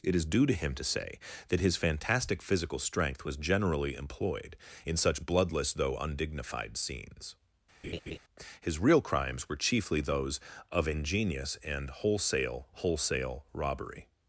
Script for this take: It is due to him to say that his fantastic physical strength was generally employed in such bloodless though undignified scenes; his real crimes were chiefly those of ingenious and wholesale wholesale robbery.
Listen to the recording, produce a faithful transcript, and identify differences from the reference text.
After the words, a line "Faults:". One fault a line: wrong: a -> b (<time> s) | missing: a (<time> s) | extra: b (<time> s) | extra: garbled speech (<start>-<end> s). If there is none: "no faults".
It is due to him to say that his fantastic physical strength was generally employed in such bloodless though undignified scenes; his real crimes were chiefly those of ingenious and wholesale wholesale robbery.
Faults:
no faults